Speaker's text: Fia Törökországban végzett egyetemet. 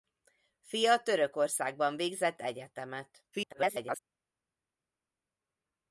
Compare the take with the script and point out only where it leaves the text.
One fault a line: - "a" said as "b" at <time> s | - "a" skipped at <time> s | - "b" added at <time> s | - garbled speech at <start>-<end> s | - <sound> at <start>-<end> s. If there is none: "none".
- garbled speech at 3.3-4.0 s